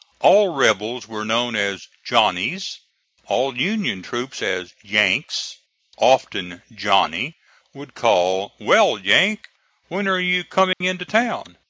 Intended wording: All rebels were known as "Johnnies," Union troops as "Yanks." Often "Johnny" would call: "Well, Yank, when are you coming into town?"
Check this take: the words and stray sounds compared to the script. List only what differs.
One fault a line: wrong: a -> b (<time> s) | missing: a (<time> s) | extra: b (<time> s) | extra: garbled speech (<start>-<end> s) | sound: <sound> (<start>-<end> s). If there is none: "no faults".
extra: all (3.3 s)
sound: dropout (10.7-10.8 s)